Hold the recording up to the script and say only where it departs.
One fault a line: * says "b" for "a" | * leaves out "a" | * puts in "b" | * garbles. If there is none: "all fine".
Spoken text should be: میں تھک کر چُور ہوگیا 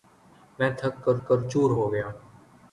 * puts in "کر"